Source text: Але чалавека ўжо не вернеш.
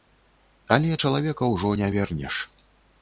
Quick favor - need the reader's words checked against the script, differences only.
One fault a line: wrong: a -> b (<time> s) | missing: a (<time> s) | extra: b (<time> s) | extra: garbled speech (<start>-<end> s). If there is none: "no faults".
no faults